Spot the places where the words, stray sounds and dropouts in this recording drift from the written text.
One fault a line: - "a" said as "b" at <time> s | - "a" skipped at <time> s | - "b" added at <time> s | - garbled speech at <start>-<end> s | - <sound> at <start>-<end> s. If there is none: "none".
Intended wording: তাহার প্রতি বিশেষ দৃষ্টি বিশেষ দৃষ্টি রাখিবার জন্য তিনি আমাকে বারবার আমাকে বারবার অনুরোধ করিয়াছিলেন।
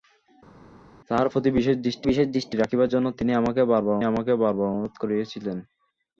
none